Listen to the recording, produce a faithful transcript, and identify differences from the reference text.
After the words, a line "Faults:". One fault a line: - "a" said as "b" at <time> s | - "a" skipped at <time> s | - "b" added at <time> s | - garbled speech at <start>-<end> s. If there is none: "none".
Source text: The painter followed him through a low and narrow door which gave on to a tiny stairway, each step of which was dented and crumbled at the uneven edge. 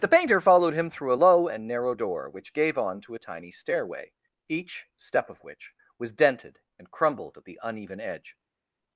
The painter followed him through a low and narrow door which gave on to a tiny stairway, each step of which was dented and crumbled at the uneven edge.
Faults:
none